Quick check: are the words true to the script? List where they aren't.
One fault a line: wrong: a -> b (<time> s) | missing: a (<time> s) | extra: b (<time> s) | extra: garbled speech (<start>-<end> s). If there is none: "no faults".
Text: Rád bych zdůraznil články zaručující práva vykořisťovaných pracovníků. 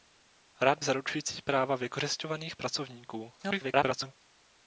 missing: bych zdůraznil články (0.8 s)
extra: garbled speech (3.4-4.1 s)